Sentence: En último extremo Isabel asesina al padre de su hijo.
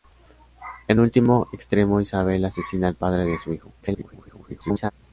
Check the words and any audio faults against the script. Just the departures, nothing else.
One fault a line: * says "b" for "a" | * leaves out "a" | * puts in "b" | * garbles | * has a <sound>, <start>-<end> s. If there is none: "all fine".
* garbles